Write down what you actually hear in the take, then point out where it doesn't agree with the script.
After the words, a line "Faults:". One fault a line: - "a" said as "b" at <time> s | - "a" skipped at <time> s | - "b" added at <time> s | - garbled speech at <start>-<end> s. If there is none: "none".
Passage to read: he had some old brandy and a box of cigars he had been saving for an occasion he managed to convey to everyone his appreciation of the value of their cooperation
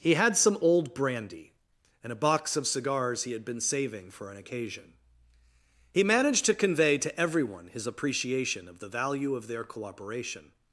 he had some old brandy and a box of cigars he had been saving for an occasion he managed to convey to everyone his appreciation of the value of their cooperation
Faults:
none